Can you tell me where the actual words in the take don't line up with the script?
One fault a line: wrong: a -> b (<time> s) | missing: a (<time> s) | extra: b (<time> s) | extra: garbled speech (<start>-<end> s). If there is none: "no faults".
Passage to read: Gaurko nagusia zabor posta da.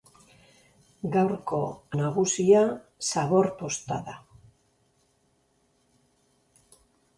no faults